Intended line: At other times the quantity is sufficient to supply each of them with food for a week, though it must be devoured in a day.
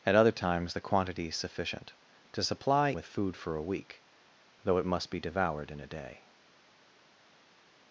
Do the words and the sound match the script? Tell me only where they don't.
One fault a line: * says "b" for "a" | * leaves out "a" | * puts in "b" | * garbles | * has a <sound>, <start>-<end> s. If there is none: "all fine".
* leaves out "each of them"